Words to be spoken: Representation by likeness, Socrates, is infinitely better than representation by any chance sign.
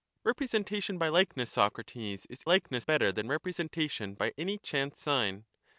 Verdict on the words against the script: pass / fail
fail